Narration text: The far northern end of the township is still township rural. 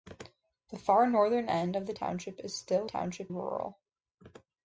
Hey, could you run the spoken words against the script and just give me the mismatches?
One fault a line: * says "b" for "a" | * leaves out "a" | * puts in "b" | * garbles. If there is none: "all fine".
all fine